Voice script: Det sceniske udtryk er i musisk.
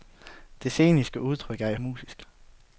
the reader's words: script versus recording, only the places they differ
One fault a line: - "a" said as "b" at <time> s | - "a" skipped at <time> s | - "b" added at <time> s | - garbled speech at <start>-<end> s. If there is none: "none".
none